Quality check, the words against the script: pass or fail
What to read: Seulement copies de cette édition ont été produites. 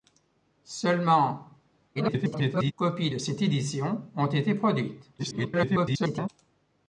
fail